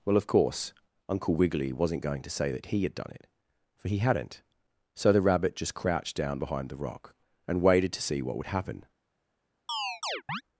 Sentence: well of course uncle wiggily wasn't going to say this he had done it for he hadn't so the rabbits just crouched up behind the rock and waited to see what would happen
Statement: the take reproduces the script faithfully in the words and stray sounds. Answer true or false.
false